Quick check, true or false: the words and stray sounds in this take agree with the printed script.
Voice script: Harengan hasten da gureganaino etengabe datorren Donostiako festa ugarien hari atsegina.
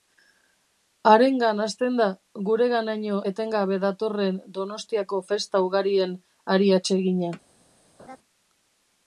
false